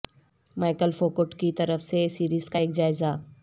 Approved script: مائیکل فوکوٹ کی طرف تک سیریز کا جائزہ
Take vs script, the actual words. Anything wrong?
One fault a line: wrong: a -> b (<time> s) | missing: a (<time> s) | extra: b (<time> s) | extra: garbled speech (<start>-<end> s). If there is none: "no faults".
wrong: تک -> سے (1.8 s)
extra: ایک (2.5 s)